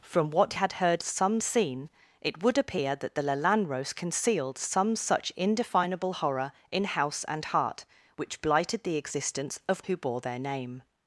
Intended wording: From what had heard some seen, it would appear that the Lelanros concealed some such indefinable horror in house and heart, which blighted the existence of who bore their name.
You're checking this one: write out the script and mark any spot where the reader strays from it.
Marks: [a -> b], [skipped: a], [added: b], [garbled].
From what had heard some seen, it would appear that the Lelanros concealed some such indefinable horror in house and heart, which blighted the existence of who bore their name.